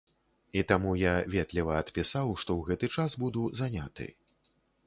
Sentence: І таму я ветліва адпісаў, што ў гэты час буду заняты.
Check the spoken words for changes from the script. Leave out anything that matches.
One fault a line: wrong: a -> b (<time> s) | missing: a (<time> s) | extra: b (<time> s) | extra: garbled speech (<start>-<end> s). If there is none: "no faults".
no faults